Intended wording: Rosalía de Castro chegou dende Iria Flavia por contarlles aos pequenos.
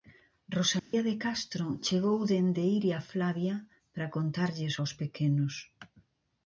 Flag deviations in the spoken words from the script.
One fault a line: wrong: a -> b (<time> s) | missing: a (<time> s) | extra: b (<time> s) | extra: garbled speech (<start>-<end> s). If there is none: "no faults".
wrong: por -> para (3.9 s)